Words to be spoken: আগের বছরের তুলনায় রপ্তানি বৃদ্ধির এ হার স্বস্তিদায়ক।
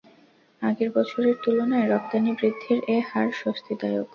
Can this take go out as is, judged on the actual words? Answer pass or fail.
pass